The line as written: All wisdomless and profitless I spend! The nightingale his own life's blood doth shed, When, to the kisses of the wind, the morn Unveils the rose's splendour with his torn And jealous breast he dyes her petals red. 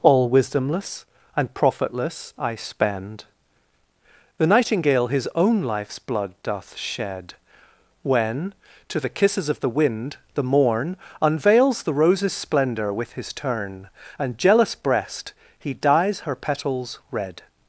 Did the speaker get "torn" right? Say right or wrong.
wrong